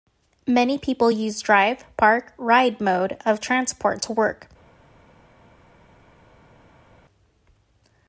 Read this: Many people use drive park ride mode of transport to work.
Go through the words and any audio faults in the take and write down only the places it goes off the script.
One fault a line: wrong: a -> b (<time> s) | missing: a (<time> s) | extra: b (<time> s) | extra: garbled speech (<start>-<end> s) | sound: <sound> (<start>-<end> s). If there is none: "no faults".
no faults